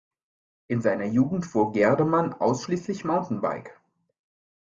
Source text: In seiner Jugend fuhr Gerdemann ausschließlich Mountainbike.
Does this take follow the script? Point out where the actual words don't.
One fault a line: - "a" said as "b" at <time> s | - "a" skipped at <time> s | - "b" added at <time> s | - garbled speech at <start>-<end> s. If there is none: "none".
none